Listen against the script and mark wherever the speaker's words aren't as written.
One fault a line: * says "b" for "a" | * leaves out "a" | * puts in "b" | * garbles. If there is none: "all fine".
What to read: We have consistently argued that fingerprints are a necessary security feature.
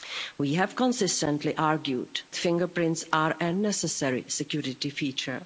* leaves out "that"